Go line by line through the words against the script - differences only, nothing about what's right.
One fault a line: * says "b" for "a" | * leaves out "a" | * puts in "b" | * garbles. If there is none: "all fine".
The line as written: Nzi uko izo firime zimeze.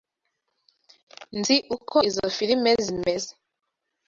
all fine